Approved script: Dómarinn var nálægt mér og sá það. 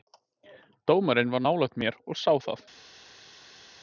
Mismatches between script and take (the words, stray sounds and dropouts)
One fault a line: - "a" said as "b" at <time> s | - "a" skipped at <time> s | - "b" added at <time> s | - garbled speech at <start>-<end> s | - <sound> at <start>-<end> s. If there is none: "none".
none